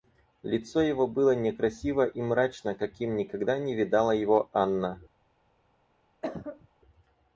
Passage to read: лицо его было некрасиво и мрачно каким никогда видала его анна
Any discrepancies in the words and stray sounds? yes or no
yes